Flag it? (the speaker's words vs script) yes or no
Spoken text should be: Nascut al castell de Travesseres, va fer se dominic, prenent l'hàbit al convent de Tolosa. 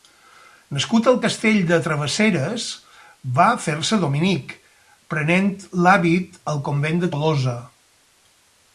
no